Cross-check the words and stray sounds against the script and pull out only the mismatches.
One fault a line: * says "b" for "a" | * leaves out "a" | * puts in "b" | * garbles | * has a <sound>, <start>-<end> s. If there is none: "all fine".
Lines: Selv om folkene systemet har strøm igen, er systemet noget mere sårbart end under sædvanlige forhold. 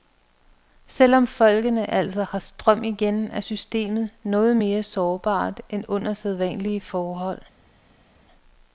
* says "altså" for "systemet"